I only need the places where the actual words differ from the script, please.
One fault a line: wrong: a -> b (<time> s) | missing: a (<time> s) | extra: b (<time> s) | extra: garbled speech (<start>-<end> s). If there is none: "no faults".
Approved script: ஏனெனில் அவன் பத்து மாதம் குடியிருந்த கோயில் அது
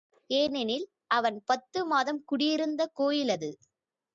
no faults